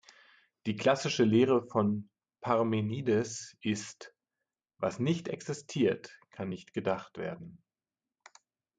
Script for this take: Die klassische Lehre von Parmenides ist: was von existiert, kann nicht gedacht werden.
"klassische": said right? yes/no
yes